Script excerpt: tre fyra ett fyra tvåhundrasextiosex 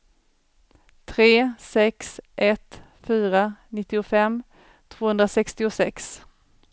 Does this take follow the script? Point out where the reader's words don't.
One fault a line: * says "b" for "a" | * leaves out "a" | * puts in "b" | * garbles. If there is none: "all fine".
* says "sex" for "fyra"
* puts in "nittiofem"